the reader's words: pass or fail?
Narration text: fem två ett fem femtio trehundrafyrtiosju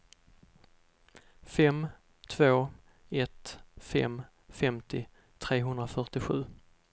pass